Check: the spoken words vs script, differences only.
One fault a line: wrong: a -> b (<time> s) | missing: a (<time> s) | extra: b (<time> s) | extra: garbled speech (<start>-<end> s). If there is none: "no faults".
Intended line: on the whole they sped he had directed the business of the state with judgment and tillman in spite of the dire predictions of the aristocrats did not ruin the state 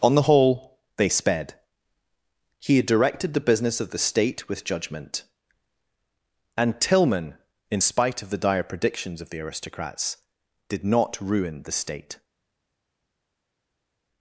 no faults